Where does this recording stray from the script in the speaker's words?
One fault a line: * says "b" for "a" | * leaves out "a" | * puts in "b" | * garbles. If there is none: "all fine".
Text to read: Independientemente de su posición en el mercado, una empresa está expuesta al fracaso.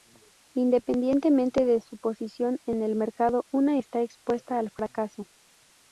* leaves out "empresa"